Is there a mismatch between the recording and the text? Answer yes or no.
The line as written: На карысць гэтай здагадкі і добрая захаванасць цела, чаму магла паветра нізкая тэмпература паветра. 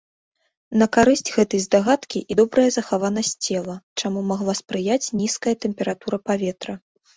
yes